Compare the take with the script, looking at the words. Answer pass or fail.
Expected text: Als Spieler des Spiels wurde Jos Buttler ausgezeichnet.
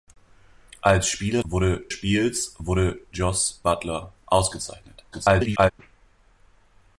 fail